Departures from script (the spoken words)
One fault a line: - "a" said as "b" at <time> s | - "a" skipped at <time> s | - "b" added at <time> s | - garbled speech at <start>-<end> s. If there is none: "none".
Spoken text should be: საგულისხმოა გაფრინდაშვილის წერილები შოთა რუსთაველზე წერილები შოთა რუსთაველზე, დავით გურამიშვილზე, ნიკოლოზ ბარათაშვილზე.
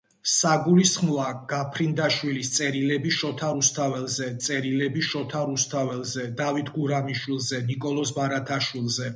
none